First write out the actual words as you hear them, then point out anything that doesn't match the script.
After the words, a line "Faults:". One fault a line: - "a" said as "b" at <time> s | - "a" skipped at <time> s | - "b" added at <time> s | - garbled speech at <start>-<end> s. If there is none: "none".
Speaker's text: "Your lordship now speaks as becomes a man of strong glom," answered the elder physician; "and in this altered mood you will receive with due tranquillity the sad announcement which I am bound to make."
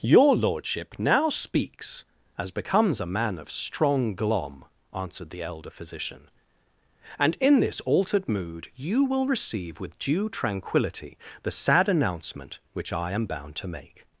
"Your lordship now speaks as becomes a man of strong glom," answered the elder physician; "and in this altered mood you will receive with due tranquillity the sad announcement which I am bound to make."
Faults:
none